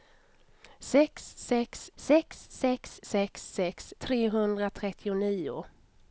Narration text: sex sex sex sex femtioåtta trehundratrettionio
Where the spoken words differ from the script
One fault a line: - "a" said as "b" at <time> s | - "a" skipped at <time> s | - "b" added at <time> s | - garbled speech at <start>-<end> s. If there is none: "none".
- "femtioåtta" said as "sex sex" at 3.0 s